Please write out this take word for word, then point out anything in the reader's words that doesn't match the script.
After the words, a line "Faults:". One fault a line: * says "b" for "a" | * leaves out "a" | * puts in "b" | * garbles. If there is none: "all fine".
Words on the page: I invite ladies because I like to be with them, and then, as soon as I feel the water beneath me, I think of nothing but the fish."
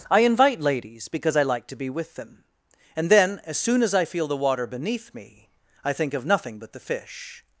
I invite ladies because I like to be with them, and then, as soon as I feel the water beneath me, I think of nothing but the fish."
Faults:
all fine